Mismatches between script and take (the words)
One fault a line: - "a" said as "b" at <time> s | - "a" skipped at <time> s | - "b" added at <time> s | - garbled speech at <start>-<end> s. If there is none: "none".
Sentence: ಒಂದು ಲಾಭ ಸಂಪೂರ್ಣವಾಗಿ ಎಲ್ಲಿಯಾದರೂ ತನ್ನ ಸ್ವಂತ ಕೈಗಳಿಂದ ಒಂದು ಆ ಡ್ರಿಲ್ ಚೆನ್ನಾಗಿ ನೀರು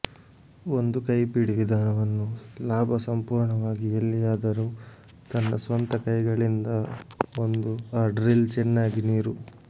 - "ಕೈಪಿಡಿ ವಿಧಾನವನ್ನು" added at 1.1 s